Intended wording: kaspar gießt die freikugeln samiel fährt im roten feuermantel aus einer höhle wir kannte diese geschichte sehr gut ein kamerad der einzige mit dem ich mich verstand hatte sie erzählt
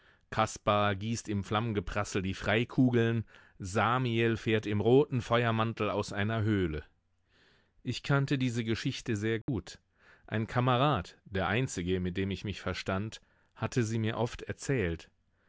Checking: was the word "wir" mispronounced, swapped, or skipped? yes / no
yes